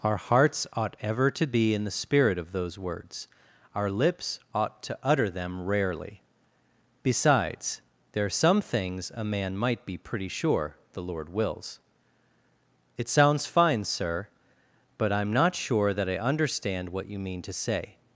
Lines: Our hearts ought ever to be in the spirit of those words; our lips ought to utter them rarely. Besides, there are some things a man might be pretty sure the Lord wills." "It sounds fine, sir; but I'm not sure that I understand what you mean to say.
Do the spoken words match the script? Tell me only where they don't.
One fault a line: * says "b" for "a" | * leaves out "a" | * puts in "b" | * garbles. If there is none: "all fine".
all fine